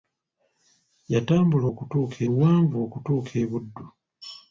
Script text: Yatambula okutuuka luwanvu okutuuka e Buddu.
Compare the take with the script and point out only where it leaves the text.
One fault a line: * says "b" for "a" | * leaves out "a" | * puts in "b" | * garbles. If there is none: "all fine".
all fine